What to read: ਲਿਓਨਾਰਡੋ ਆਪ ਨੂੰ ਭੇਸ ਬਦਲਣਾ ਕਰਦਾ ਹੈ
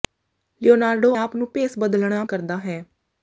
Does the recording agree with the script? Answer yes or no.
yes